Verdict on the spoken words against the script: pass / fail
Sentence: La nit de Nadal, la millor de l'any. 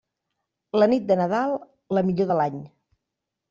pass